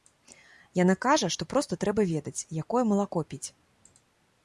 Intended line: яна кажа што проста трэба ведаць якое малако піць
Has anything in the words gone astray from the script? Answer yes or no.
no